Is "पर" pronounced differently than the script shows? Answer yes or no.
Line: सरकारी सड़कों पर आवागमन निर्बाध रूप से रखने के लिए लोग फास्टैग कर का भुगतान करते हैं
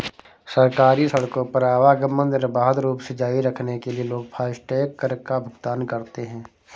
no